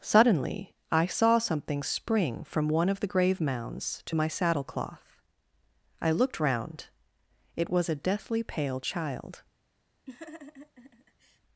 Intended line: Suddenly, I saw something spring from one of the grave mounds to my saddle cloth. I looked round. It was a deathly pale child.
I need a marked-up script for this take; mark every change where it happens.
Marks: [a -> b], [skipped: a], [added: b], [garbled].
Suddenly, I saw something spring from one of the grave mounds to my saddle cloth. I looked round. It was a deathly pale child.